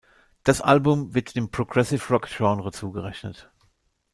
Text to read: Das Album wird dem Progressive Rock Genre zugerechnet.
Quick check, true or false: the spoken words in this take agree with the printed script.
true